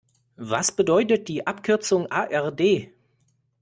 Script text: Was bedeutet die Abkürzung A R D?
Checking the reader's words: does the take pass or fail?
pass